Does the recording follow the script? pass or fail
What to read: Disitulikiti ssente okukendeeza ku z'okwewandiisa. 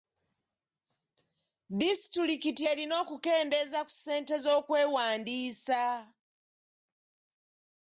fail